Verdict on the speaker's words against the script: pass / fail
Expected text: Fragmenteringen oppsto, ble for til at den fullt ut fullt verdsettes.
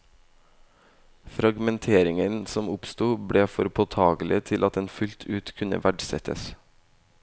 fail